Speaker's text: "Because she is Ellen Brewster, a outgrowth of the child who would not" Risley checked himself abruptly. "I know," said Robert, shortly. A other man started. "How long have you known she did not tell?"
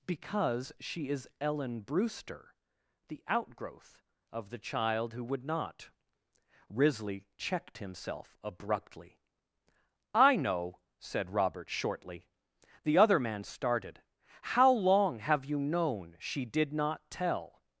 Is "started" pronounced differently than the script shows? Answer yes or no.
no